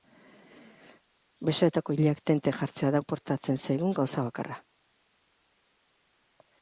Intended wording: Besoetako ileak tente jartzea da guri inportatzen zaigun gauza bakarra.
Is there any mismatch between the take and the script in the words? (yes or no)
yes